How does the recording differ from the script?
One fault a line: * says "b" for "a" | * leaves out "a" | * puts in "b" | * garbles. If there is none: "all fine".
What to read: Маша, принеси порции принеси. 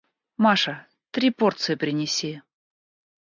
* says "три" for "принеси"